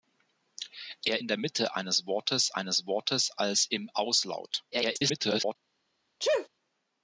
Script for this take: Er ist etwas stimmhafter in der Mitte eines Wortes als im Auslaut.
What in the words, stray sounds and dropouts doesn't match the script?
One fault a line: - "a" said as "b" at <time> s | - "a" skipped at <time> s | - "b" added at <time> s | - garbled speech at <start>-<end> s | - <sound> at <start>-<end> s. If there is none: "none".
- "ist etwas stimmhafter" skipped at 1.2 s
- "eines Wortes" added at 2.5 s
- garbled speech at 4.7-5.6 s
- sneeze at 6.2-6.5 s